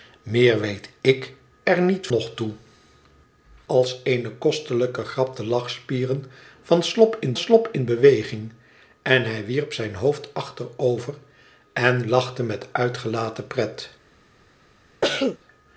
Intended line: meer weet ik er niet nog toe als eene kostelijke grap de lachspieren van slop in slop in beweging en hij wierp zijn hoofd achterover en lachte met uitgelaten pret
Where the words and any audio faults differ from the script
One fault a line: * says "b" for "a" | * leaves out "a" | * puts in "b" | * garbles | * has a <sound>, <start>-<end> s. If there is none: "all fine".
* has a cough, 15.0-15.4 s